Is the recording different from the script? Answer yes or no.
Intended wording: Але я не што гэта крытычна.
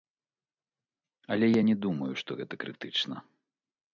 yes